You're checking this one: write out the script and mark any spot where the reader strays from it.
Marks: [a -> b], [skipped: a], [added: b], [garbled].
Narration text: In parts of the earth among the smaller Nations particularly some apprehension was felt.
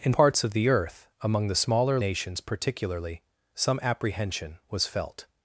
In parts of the earth among the smaller Nations particularly some apprehension was felt.